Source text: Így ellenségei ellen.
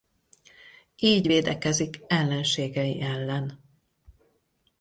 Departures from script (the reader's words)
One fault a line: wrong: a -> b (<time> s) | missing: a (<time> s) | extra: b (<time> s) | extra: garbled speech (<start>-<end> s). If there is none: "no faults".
extra: védekezik (1.2 s)